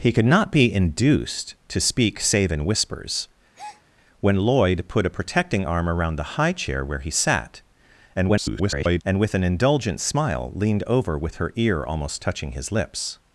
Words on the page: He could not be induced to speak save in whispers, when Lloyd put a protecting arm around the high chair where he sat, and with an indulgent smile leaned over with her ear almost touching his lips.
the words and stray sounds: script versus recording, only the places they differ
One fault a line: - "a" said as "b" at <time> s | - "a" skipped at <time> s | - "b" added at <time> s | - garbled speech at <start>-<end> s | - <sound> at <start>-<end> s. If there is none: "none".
- breath at 3.5-3.8 s
- garbled speech at 8.1-9.0 s